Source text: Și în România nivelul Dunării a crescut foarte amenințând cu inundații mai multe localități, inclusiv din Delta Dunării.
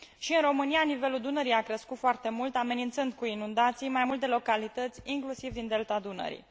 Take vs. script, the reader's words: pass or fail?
fail